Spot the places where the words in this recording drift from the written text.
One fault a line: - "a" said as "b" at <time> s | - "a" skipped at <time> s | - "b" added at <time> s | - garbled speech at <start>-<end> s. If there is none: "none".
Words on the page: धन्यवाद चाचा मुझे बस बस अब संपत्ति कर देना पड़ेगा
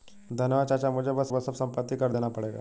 none